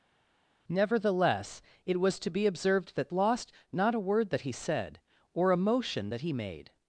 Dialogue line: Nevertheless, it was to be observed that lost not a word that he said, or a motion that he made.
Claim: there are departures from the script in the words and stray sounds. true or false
false